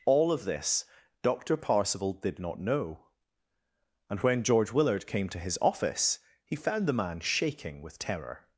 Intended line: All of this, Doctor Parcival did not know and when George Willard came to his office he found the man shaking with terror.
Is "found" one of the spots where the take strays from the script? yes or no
no